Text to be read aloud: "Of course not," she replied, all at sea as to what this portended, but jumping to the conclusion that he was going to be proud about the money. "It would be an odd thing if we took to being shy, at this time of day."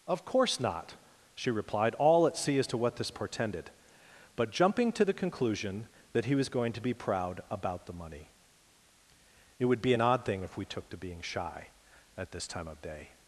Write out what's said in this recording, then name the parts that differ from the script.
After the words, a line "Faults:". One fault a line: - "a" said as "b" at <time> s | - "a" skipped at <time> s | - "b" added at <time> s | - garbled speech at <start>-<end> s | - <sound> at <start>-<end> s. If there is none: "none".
"Of course not," she replied, all at sea as to what this portended, but jumping to the conclusion that he was going to be proud about the money. "It would be an odd thing if we took to being shy, at this time of day."
Faults:
none